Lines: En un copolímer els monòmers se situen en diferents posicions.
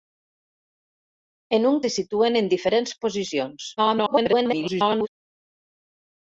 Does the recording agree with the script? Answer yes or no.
no